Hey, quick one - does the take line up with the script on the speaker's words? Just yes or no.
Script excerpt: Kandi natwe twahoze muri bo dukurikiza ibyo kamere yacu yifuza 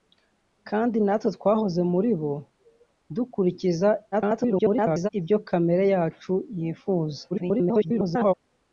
no